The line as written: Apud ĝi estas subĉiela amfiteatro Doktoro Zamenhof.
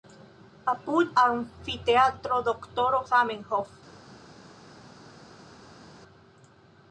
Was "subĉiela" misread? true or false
true